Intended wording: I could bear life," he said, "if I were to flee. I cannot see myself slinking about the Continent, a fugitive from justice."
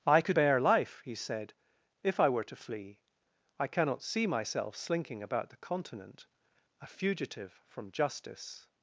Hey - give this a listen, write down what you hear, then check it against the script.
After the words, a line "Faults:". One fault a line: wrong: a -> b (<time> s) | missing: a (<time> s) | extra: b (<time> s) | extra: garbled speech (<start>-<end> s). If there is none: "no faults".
I could bear life," he said, "if I were to flee. I cannot see myself slinking about the Continent, a fugitive from justice."
Faults:
no faults